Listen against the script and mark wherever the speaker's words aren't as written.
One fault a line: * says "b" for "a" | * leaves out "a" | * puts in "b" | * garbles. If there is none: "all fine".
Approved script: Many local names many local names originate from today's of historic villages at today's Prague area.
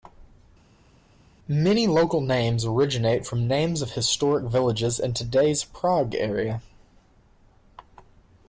* leaves out "many local names"
* says "names" for "today's"
* says "in" for "at"